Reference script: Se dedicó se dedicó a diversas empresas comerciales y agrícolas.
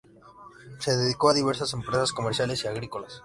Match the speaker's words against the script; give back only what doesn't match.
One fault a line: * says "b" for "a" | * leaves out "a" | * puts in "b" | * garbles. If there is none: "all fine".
* leaves out "se dedicó"